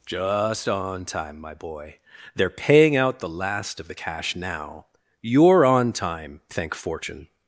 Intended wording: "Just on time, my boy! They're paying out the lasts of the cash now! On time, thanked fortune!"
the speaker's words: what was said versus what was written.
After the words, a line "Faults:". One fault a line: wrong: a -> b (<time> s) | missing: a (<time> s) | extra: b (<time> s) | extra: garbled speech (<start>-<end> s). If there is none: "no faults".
"Just on time, my boy! They're paying out the last of the cash now! You're on time, thank fortune!"
Faults:
wrong: lasts -> last (3.3 s)
extra: You're (5.2 s)
wrong: thanked -> thank (6.5 s)